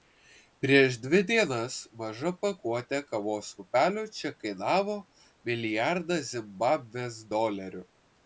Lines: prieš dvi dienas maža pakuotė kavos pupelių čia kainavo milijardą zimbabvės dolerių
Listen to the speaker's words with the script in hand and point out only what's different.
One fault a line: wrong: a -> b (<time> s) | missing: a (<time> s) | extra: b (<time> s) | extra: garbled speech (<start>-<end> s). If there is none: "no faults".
no faults